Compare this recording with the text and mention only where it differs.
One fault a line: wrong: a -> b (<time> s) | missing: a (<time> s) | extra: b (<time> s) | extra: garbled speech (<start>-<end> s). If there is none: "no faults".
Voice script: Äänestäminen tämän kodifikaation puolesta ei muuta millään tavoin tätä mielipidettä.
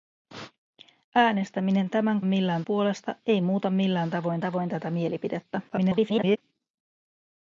wrong: kodifikaation -> millään (2.2 s)
extra: tavoin (4.4 s)
extra: garbled speech (5.7-6.4 s)